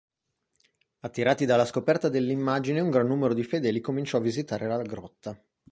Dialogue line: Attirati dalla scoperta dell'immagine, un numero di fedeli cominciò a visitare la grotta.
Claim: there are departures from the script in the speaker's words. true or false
true